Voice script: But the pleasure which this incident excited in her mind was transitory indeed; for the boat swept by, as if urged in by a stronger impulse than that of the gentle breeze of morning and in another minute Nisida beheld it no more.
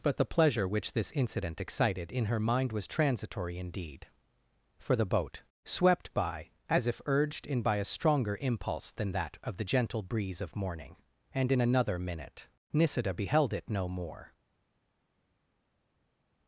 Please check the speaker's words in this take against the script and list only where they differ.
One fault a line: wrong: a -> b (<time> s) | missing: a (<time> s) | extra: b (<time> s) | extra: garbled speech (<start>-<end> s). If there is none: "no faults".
no faults